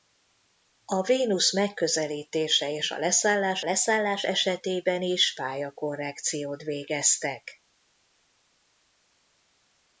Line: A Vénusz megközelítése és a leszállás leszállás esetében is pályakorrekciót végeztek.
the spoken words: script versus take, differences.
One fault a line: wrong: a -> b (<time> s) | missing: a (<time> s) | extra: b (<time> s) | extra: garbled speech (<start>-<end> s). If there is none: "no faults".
no faults